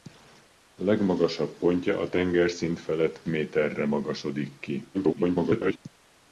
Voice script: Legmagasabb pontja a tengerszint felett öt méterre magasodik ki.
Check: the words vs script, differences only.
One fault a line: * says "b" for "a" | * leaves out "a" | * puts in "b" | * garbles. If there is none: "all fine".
* leaves out "öt"
* garbles